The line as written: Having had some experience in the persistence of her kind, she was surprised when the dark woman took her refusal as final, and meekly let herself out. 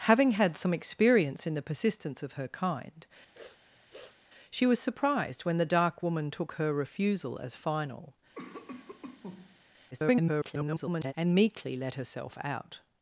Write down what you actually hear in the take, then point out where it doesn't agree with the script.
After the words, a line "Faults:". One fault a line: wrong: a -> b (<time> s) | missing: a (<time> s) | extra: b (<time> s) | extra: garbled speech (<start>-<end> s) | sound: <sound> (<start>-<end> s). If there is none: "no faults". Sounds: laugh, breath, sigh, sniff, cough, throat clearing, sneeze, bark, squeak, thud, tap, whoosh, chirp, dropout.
Having had some experience in the persistence of her kind, she was surprised when the dark woman took her refusal as final, [garbled] and meekly let herself out.
Faults:
sound: sniff (3.3-4.2 s)
sound: cough (8.3-9.6 s)
extra: garbled speech (9.9-11.1 s)